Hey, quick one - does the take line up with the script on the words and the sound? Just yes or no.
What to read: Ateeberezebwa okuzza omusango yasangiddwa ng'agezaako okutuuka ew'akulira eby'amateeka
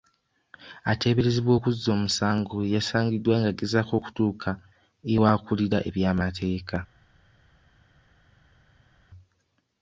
yes